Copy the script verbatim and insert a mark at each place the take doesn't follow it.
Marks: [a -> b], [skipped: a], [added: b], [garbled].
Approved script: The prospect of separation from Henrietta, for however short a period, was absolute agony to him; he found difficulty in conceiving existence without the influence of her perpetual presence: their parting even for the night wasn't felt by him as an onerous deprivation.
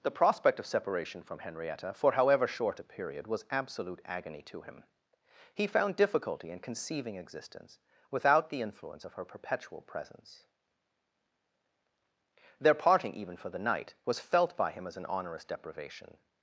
The prospect of separation from Henrietta, for however short a period, was absolute agony to him; he found difficulty in conceiving existence without the influence of her perpetual presence: their parting even for the night [wasn't -> was] felt by him as an onerous deprivation.